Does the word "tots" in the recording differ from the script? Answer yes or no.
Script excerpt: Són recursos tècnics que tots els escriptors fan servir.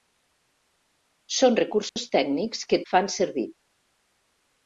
yes